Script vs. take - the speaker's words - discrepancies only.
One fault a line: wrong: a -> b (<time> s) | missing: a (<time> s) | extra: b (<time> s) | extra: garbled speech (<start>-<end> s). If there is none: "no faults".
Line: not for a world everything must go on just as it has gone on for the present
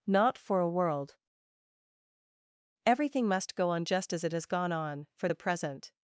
no faults